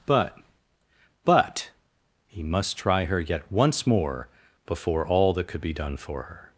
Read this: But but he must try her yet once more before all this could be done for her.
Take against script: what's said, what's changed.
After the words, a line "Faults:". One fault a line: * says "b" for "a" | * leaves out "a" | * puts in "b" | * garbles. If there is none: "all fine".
But but he must try her yet once more before all that could be done for her.
Faults:
* says "that" for "this"